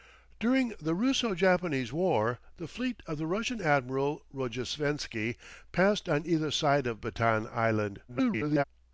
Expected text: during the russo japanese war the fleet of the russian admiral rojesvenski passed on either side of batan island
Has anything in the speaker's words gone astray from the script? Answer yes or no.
yes